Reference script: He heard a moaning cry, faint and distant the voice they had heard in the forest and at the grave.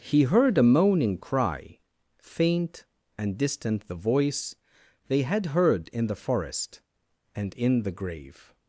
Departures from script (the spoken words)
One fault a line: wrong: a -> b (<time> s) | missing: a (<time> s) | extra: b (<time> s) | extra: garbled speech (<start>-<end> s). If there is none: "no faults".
wrong: at -> in (7.5 s)